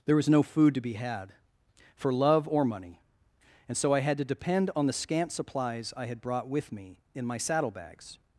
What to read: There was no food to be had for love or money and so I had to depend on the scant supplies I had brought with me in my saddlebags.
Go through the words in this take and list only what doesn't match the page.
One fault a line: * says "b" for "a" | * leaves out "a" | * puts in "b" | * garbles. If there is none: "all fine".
all fine